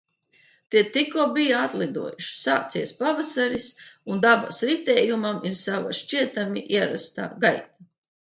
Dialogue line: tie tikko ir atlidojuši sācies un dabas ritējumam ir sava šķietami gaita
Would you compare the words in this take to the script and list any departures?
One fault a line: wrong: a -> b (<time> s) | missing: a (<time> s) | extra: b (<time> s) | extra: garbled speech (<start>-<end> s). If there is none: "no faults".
wrong: ir -> bija (1.4 s)
extra: pavasaris (3.0 s)
extra: ierastā (6.8 s)